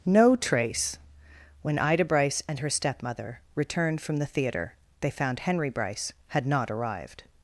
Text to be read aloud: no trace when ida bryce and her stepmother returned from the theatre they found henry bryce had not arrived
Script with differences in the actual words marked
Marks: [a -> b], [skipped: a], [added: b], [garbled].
no trace when ida bryce and her stepmother returned from the theatre they found henry bryce had not arrived